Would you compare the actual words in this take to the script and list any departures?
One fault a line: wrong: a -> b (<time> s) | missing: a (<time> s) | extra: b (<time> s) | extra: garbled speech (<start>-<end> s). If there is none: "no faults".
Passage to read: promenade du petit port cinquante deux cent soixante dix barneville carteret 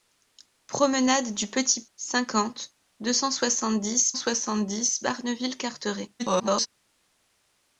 missing: port (1.9 s)
extra: soixante dix (4.1 s)
extra: garbled speech (6.2-6.7 s)